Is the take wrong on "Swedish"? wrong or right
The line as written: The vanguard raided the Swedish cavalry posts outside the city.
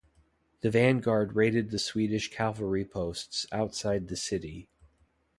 right